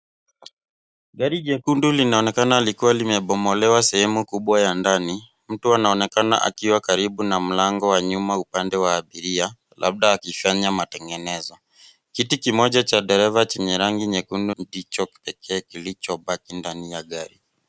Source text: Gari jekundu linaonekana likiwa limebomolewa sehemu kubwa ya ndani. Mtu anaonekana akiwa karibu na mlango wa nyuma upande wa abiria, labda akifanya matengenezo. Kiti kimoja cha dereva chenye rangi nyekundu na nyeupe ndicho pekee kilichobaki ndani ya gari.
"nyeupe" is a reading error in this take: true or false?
true